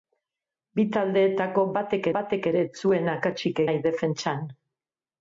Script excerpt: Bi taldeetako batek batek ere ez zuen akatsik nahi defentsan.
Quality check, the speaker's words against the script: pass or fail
pass